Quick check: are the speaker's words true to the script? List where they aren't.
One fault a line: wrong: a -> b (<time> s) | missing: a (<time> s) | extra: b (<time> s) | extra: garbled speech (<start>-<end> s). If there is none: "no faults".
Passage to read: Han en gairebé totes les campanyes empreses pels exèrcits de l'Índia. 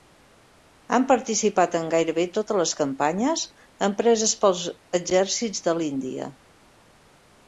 extra: participat (1.1 s)